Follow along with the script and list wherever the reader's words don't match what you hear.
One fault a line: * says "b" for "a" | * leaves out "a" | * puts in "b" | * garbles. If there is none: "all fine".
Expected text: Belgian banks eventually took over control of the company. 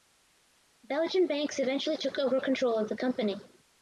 all fine